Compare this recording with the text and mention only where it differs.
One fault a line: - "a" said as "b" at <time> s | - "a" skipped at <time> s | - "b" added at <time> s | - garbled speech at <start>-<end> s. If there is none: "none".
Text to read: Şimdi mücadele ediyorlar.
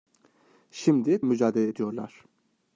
none